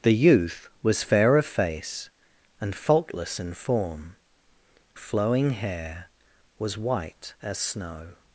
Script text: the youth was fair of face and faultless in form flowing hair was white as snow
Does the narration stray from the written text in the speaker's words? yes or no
no